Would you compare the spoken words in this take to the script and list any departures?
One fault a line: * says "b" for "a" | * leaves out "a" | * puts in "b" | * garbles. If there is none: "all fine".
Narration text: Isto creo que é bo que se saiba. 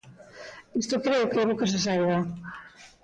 all fine